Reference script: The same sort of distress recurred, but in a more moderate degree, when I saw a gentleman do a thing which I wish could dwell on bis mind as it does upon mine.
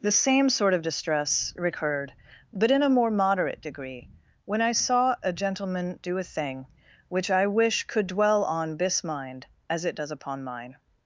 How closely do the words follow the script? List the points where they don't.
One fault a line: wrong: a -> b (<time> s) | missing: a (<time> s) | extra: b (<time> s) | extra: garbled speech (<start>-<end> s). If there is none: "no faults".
wrong: bis -> this (8.8 s)